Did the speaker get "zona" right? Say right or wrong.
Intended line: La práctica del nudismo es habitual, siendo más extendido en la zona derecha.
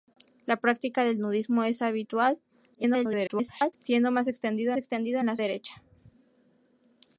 wrong